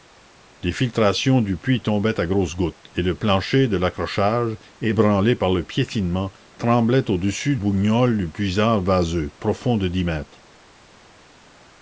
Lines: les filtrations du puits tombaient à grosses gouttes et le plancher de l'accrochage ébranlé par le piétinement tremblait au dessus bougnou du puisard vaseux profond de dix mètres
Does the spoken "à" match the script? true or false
true